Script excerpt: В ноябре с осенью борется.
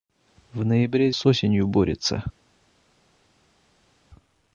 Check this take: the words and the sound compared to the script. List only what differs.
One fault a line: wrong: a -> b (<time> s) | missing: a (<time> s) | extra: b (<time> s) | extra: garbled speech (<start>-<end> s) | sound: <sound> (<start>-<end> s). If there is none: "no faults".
no faults